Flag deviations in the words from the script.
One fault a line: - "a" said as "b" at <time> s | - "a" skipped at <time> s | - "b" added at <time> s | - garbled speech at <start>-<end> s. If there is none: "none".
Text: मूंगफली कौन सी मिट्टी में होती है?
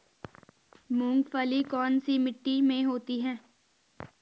none